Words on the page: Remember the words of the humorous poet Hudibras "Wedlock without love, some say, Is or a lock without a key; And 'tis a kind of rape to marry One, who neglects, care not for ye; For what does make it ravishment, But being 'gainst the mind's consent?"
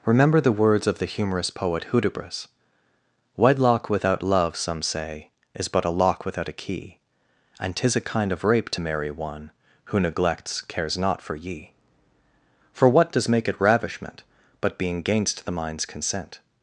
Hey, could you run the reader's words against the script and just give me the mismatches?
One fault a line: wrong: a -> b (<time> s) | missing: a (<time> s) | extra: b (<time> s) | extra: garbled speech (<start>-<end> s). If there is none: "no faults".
wrong: or -> but (5.7 s)
wrong: care -> cares (10.6 s)